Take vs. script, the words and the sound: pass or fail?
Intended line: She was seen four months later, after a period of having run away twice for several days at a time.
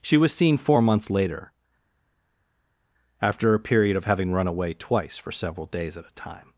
pass